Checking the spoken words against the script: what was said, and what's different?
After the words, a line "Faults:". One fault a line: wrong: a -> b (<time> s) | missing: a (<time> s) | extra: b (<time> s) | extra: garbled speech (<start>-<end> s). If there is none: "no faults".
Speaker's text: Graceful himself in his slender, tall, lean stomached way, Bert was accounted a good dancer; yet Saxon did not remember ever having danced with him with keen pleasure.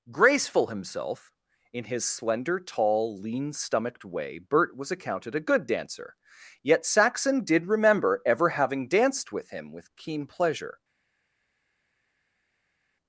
Graceful himself in his slender, tall, lean stomached way, Bert was accounted a good dancer; yet Saxon did remember ever having danced with him with keen pleasure.
Faults:
missing: not (7.7 s)